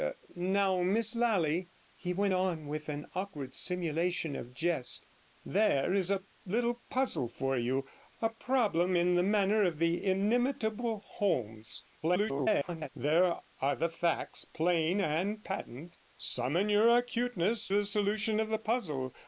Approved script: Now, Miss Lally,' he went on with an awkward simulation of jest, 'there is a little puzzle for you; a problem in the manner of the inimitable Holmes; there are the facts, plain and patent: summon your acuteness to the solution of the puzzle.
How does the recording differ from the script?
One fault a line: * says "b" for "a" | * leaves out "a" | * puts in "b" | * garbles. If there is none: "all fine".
* garbles
* leaves out "to"